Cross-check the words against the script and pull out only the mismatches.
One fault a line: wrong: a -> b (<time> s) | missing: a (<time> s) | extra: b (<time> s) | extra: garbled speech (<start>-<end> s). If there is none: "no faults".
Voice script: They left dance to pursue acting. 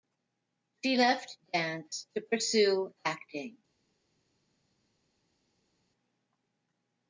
wrong: They -> She (0.8 s)